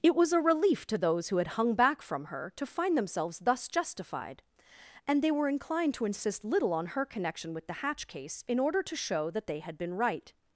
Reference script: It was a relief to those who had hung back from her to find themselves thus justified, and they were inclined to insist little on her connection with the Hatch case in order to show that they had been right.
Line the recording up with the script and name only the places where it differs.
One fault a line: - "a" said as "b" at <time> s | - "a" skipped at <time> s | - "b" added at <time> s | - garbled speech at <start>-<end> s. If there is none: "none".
none